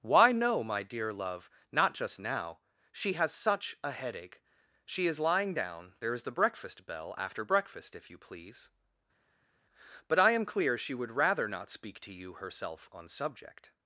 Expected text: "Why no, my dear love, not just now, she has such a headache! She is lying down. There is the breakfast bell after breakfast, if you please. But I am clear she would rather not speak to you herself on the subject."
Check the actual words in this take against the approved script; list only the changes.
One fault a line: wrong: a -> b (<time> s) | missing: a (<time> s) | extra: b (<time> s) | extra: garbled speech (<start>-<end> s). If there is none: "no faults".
missing: the (13.1 s)